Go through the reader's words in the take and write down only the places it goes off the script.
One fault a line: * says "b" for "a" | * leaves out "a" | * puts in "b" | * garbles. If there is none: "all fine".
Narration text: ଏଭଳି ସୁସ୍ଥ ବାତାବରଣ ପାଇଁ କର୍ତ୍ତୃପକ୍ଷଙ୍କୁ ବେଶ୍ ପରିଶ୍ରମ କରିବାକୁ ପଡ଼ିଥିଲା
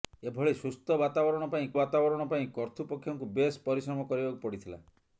* puts in "ବାତାବରଣ ପାଇଁ"